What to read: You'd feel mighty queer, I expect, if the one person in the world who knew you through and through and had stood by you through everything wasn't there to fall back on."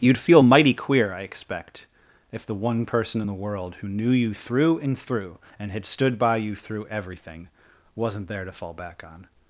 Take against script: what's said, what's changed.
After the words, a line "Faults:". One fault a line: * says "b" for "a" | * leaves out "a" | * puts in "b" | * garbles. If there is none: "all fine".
You'd feel mighty queer, I expect, if the one person in the world who knew you through and through and had stood by you through everything wasn't there to fall back on."
Faults:
all fine